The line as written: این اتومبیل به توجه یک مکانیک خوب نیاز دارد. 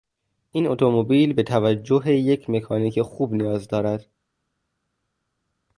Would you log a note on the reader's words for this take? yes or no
no